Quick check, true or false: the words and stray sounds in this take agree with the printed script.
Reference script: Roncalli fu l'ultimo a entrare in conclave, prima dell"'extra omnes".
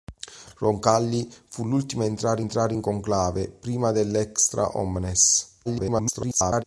false